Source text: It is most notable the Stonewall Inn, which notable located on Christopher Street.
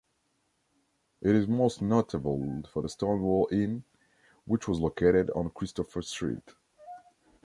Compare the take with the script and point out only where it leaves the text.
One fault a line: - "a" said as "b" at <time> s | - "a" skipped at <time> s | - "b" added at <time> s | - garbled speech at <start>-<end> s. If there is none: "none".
- "for" added at 2.7 s
- "notable" said as "was" at 4.7 s